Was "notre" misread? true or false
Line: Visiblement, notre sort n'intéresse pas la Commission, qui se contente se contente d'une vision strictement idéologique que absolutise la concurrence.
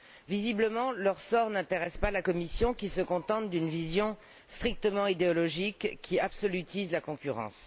true